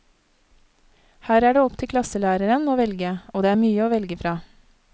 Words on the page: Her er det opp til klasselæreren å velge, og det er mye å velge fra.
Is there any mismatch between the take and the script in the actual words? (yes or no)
no